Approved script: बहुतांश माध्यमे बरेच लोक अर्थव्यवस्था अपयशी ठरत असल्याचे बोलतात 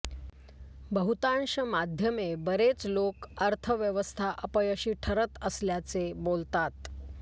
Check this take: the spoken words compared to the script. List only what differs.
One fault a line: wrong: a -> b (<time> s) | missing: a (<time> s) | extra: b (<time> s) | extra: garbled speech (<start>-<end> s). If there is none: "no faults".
no faults